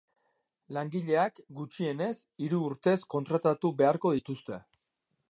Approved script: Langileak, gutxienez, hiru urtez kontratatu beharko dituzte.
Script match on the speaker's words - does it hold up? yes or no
yes